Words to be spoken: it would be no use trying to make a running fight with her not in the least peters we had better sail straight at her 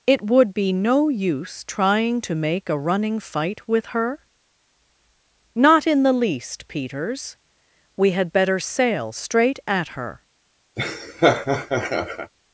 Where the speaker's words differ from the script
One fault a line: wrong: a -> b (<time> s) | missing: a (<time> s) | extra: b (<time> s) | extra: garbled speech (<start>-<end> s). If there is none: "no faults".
no faults